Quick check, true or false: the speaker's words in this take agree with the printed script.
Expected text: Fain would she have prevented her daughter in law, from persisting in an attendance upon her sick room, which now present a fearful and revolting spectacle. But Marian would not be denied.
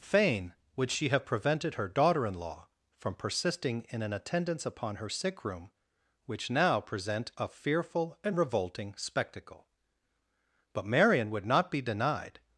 true